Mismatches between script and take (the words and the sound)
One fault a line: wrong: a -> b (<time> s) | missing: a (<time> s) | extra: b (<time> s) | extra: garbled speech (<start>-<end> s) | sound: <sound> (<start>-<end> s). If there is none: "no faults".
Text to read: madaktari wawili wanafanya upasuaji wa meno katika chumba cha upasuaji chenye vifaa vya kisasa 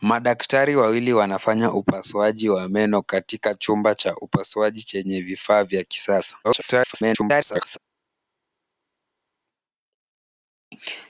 extra: garbled speech (6.4-7.8 s)